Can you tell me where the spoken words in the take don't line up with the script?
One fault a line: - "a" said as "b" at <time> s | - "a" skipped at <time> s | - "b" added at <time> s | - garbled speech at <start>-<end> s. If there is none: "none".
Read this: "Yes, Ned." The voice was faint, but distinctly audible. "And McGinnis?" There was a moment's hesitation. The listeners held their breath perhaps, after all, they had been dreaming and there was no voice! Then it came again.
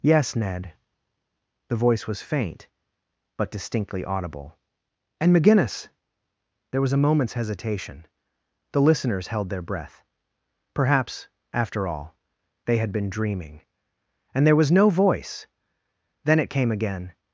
none